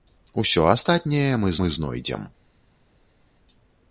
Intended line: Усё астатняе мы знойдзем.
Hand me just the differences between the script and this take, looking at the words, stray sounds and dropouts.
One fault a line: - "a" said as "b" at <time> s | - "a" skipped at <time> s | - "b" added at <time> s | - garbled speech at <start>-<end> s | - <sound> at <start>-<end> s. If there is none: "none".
- "мы" added at 1.6 s